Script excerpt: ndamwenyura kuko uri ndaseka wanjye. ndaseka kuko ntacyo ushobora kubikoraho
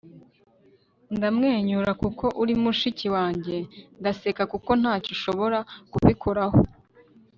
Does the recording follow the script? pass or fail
fail